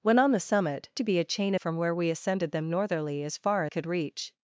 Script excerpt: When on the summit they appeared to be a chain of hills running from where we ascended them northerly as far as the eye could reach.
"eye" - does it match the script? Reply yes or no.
no